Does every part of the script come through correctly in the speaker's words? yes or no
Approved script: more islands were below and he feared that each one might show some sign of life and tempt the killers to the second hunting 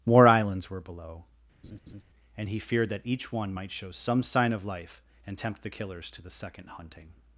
yes